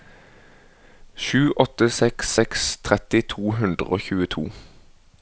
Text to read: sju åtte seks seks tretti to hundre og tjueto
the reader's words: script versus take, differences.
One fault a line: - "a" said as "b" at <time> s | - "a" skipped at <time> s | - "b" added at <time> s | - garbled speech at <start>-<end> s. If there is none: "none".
none